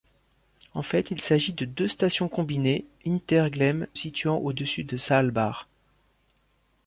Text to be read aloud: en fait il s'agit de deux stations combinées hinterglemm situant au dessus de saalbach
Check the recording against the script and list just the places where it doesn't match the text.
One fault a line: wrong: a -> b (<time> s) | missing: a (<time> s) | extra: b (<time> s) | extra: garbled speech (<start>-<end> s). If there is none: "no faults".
no faults